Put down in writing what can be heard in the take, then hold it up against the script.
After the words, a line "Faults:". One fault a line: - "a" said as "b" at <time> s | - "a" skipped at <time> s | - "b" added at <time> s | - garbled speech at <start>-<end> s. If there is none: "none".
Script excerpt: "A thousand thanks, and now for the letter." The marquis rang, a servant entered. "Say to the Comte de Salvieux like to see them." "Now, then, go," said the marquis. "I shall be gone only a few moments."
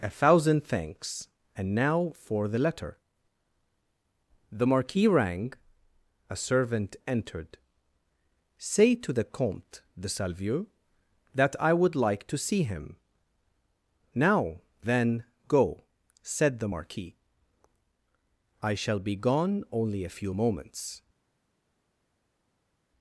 "A thousand thanks, and now for the letter." The marquis rang, a servant entered. "Say to the Comte de Salvieux that I would like to see him." "Now, then, go," said the marquis. "I shall be gone only a few moments."
Faults:
- "that I would" added at 11.3 s
- "them" said as "him" at 12.6 s